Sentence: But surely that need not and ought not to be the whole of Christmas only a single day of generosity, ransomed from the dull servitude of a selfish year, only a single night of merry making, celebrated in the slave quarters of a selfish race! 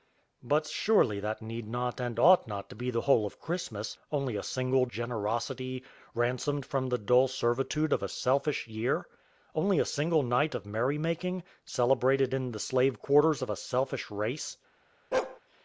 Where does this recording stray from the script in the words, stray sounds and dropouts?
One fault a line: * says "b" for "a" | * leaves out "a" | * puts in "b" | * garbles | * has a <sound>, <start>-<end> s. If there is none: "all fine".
* leaves out "day of"
* has a bark, 15.1-15.4 s